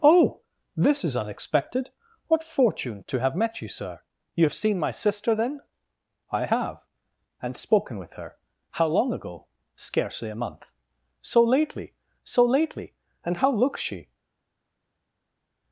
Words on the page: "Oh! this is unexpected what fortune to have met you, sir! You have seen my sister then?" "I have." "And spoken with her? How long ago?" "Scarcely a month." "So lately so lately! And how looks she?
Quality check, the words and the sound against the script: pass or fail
pass